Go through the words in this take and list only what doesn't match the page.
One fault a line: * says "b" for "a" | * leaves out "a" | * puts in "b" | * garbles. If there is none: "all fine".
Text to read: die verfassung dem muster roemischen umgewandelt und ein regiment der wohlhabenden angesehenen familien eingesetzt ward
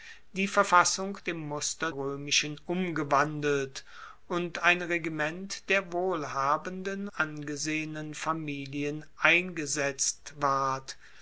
all fine